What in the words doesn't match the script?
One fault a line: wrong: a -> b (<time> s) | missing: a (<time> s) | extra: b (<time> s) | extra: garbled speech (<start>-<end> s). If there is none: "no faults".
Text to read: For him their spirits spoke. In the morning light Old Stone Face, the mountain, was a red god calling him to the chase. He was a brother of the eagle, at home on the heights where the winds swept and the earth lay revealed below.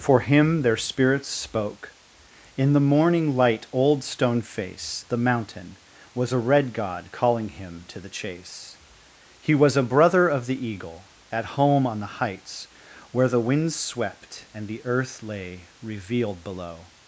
no faults